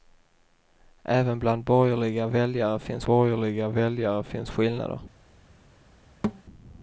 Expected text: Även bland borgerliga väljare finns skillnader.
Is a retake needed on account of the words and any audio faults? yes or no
yes